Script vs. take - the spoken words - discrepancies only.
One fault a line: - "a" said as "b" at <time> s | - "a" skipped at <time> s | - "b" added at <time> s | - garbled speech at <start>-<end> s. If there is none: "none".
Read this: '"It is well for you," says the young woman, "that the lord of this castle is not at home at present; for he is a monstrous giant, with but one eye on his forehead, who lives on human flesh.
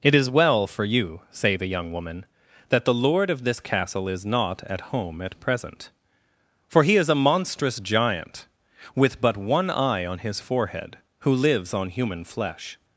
- "says" said as "say" at 1.3 s